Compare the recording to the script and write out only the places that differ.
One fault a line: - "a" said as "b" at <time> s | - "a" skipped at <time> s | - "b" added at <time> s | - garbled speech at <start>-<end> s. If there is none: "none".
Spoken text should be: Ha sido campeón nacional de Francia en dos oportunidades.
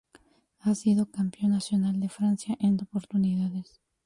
- "dos" skipped at 2.8 s